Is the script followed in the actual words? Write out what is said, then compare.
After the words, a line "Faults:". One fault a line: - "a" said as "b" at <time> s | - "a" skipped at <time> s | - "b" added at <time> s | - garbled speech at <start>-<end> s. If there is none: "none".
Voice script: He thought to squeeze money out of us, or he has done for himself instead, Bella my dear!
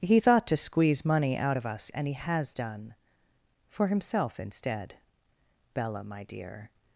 He thought to squeeze money out of us, and he has done for himself instead, Bella my dear!
Faults:
- "or" said as "and" at 1.9 s